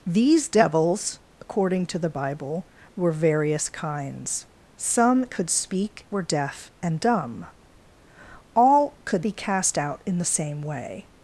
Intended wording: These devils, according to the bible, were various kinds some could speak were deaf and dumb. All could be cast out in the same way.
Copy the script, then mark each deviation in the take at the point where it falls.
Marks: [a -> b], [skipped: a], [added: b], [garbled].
These devils, according to the bible, were various kinds some could speak were deaf and dumb. All could be cast out in the same way.